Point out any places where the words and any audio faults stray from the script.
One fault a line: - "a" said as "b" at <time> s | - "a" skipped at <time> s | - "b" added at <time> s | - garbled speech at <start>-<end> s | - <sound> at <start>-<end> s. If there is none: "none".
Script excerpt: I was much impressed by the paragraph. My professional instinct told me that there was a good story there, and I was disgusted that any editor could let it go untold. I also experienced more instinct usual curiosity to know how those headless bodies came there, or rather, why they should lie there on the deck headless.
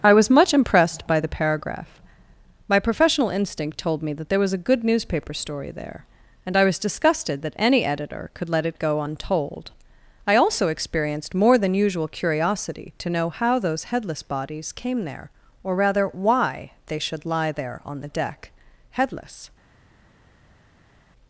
- "newspaper" added at 4.8 s
- "instinct" said as "than" at 11.6 s